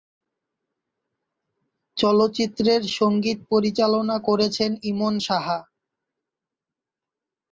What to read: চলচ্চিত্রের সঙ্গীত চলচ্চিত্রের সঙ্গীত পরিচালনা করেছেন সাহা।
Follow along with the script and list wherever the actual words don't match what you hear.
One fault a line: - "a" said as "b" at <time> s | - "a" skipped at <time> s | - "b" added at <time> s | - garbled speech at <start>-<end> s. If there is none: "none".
- "চলচ্চিত্রের সঙ্গীত" skipped at 3.4 s
- "ইমন" added at 4.8 s